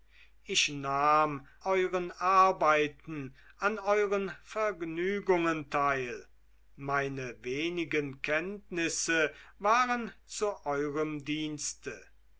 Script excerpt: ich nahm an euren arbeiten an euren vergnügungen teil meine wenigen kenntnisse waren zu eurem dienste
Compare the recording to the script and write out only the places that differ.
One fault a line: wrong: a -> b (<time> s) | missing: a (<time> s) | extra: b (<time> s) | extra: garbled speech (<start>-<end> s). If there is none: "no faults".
missing: an (1.5 s)